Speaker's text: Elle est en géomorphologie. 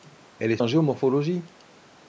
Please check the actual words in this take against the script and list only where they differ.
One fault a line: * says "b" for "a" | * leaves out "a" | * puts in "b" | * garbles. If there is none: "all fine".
all fine